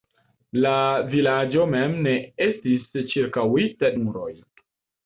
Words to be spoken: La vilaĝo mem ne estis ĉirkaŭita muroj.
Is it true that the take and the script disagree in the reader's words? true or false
false